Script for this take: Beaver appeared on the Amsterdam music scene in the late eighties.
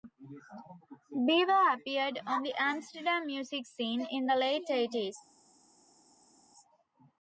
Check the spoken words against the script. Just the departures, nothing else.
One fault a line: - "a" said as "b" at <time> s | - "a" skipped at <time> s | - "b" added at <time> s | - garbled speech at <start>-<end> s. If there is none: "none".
none